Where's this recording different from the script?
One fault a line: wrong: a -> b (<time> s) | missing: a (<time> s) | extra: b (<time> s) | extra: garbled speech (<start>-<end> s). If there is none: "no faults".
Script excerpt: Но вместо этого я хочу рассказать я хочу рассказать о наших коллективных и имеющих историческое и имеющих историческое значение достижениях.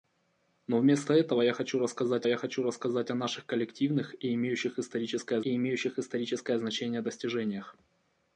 no faults